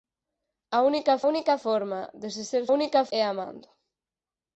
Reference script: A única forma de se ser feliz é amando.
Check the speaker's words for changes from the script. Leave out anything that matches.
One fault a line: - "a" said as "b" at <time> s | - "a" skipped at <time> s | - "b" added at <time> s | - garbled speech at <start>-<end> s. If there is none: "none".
- "única" added at 1.3 s
- "feliz" said as "única" at 2.8 s